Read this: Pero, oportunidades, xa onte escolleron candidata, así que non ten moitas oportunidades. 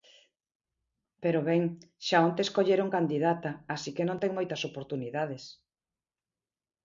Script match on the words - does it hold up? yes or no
no